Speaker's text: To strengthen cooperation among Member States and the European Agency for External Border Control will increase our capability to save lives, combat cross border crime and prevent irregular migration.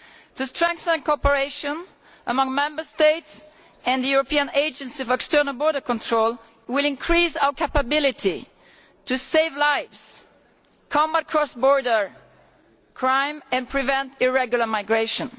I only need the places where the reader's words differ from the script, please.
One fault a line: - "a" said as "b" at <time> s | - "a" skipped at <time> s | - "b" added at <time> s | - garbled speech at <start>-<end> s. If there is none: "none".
none